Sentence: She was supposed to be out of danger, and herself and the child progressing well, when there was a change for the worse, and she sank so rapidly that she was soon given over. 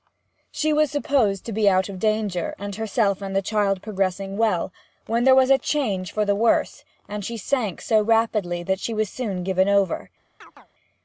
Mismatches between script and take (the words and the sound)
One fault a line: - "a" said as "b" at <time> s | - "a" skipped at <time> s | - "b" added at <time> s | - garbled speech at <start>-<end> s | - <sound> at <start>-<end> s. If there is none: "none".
- chirp at 10.4-10.7 s